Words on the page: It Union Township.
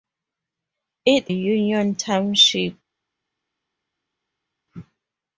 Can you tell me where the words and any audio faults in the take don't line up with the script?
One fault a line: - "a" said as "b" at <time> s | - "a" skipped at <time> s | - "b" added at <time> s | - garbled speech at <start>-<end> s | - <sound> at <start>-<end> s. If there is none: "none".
none